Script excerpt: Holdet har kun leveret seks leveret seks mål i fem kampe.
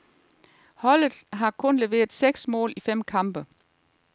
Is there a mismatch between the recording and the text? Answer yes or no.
yes